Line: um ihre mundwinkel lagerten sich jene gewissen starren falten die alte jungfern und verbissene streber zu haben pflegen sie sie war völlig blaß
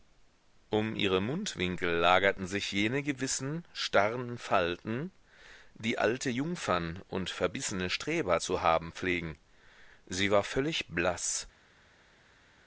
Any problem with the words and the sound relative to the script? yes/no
yes